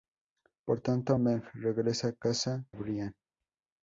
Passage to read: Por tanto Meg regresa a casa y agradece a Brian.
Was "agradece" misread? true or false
true